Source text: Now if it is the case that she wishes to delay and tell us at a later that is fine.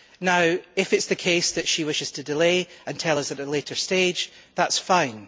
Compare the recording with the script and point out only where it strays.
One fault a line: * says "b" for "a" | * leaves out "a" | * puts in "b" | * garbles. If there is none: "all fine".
* puts in "stage"